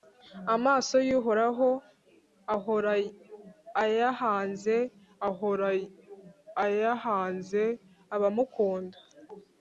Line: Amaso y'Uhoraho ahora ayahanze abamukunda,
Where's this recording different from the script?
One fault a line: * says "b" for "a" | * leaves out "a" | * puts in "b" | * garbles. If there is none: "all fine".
* puts in "ahora ayahanze"